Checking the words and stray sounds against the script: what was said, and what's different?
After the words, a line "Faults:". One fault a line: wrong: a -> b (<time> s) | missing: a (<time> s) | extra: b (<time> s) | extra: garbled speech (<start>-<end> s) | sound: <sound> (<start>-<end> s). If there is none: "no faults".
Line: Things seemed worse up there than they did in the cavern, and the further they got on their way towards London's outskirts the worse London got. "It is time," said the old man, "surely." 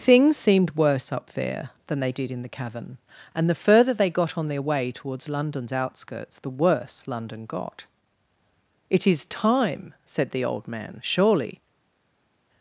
Things seemed worse up there than they did in the cavern, and the further they got on their way towards London's outskirts the worse London got. "It is time," said the old man, "surely."
Faults:
no faults